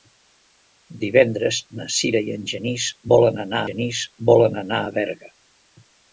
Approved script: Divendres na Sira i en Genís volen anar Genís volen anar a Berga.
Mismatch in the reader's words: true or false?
false